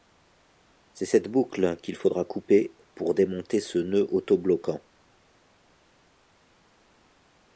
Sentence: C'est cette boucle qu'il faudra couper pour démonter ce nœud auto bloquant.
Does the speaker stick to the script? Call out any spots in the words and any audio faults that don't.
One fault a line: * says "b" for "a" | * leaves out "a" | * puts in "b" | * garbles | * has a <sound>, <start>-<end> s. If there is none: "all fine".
all fine